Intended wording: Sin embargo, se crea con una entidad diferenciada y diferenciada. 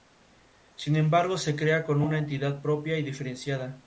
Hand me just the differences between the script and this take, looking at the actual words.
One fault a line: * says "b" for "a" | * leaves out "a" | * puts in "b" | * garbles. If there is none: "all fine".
* says "propia" for "diferenciada"